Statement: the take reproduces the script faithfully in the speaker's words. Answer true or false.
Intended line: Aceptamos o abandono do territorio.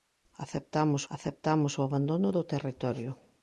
false